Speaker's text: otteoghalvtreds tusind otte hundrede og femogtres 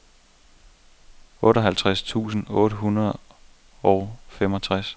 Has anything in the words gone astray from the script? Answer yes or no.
no